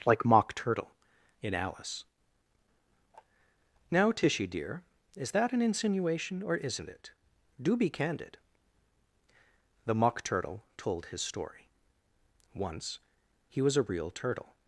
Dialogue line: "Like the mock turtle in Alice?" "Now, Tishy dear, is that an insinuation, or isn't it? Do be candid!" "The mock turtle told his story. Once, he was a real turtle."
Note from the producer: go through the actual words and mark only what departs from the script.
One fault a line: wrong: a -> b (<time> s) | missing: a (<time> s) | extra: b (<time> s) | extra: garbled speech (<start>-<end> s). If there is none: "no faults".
missing: the (0.2 s)